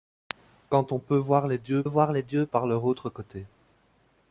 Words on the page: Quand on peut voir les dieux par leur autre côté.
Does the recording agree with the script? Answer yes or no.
no